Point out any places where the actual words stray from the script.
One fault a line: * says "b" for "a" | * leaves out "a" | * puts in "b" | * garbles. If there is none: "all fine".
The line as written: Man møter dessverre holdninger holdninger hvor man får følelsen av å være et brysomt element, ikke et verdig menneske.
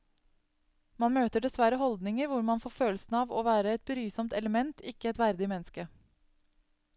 * leaves out "holdninger"